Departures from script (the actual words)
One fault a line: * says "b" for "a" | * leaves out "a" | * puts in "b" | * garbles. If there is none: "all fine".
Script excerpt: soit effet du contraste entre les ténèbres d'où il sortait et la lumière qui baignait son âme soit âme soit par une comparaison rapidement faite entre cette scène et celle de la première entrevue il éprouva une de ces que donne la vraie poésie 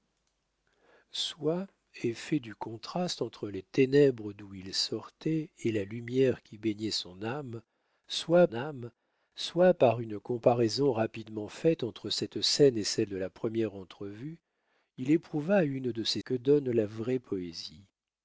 all fine